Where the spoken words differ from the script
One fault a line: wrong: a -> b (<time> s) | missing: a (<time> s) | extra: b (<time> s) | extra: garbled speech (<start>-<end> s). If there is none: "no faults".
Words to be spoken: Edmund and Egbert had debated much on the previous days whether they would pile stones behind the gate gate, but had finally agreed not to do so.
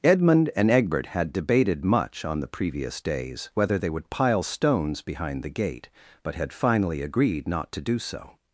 missing: gate (5.9 s)